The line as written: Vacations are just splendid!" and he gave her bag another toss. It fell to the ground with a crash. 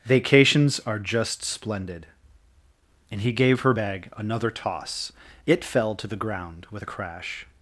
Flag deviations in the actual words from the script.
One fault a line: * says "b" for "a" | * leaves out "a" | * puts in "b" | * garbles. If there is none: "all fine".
all fine